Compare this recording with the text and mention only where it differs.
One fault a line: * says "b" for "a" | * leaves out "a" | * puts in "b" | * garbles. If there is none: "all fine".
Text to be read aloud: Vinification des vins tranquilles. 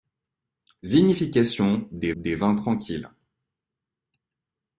* puts in "des"